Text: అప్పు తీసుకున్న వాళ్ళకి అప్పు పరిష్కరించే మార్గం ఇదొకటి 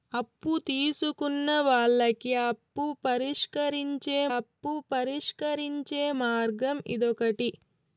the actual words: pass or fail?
fail